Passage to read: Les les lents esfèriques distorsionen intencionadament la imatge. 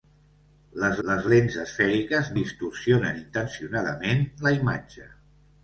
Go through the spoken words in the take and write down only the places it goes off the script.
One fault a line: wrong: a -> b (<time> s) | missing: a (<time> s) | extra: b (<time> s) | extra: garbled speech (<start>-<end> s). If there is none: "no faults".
no faults